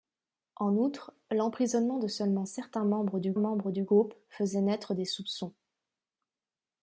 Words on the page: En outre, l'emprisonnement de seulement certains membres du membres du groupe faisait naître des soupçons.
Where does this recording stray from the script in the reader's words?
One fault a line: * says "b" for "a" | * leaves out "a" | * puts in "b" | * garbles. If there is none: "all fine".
all fine